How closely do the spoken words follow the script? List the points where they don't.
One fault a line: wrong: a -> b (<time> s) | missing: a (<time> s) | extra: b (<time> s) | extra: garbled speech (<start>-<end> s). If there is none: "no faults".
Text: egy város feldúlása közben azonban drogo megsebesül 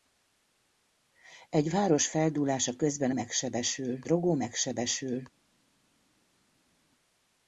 wrong: azonban -> megsebesül (3.1 s)